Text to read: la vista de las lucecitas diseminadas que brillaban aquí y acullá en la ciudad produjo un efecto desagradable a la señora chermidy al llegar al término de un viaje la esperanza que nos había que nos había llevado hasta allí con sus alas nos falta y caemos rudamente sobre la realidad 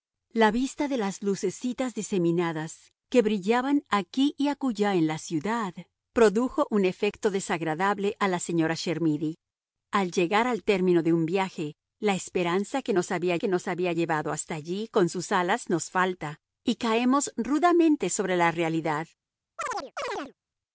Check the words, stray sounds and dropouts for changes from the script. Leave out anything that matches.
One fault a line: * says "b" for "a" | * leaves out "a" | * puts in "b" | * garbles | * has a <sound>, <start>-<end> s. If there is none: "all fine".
* has a chirp, 19.6-20.3 s